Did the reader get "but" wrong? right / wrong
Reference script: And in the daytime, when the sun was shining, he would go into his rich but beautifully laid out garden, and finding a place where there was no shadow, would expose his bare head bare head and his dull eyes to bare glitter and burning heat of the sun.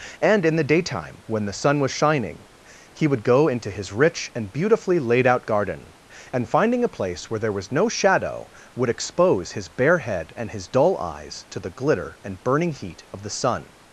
wrong